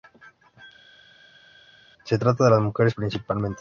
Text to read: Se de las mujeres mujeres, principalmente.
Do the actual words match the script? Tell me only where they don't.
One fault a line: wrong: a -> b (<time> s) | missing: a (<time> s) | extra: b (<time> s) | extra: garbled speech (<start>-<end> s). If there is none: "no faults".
extra: trata (2.2 s)
missing: mujeres (3.0 s)